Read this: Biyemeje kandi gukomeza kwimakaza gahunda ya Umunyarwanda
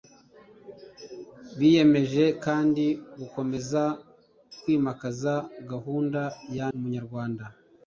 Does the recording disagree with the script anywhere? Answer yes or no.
no